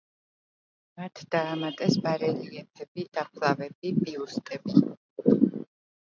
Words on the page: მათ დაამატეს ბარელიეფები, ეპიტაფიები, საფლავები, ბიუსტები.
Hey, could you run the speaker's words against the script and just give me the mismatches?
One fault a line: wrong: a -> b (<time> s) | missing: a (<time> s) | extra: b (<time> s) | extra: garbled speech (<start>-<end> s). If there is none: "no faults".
missing: ეპიტაფიები (3.1 s)